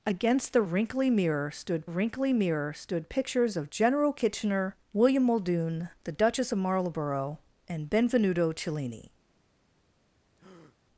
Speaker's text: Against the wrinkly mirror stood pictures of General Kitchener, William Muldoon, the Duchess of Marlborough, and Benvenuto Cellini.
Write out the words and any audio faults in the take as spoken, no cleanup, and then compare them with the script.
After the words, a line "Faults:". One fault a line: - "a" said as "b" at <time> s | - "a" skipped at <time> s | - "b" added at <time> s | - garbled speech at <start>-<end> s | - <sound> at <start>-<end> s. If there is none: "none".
Against the wrinkly mirror stood wrinkly mirror stood pictures of General Kitchener, William Muldoon, the Duchess of Marlborough, and Benvenuto Cellini.
Faults:
- "wrinkly mirror stood" added at 1.8 s
- breath at 10.4-10.8 s